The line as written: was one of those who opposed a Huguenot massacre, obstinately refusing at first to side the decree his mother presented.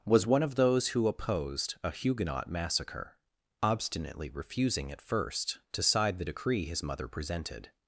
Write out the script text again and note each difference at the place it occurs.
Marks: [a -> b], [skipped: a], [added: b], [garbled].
was one of those who opposed a Huguenot massacre, obstinately refusing at first to side the decree his mother presented.